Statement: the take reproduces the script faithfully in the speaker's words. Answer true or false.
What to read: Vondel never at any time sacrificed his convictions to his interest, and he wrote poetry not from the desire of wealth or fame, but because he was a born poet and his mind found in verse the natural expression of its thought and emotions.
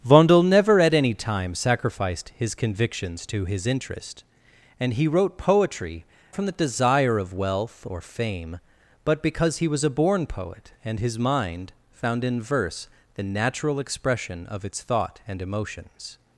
false